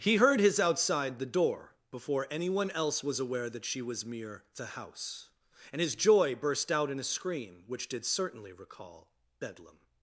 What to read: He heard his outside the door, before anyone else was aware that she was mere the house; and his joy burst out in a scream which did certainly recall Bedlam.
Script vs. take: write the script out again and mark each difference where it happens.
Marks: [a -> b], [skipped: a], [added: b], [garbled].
He heard his outside the door, before anyone else was aware that she was mere the house; and his joy burst out in a scream which did certainly recall Bedlam.